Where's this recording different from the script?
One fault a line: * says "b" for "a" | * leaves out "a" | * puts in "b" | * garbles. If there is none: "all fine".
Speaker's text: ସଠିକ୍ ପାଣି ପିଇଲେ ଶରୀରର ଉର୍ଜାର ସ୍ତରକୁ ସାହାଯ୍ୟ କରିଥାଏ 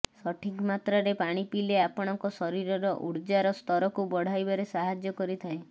* puts in "ମାତ୍ରାରେ"
* puts in "ଆପଣଙ୍କ"
* puts in "ବଢାଇବାରେ"